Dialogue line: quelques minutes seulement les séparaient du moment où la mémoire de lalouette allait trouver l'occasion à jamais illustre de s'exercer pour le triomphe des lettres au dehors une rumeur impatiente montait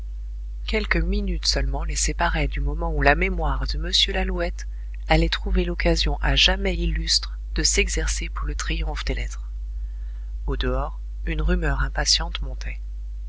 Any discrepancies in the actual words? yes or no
yes